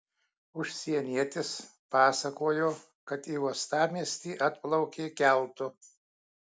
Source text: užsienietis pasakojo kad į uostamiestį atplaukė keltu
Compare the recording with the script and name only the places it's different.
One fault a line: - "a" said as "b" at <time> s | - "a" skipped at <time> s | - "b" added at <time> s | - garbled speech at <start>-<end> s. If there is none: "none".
none